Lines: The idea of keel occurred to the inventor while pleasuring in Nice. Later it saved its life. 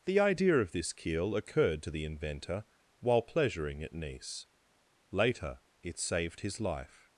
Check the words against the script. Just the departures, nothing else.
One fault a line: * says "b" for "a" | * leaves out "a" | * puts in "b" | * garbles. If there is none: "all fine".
* puts in "this"
* says "at" for "in"
* says "his" for "its"